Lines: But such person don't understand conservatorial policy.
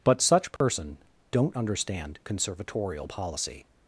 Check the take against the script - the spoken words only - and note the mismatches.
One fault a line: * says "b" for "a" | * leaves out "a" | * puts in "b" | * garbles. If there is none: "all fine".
all fine